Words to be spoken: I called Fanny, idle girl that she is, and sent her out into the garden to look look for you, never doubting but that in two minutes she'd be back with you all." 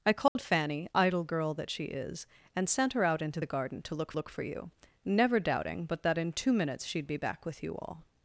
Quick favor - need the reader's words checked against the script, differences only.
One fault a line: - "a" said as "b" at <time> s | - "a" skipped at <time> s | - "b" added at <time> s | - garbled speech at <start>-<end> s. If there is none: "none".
none